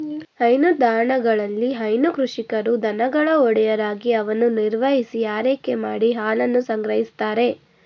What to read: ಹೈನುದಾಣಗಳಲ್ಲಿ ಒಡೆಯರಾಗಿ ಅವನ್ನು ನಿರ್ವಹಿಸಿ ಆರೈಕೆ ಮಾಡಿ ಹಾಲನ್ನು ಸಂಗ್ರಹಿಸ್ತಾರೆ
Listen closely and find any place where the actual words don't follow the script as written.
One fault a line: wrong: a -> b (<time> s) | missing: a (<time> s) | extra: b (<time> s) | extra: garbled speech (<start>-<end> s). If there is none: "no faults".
extra: ಹೈನು ಕೃಷಿಕರು ದನಗಳ (1.7 s)